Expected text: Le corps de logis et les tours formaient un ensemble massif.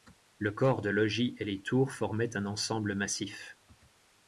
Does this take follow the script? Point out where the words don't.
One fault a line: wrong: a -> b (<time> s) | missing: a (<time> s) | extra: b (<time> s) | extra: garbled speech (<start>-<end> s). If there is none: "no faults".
no faults